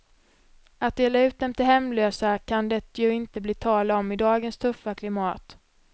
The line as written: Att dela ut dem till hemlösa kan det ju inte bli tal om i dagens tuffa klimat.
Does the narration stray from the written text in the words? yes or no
no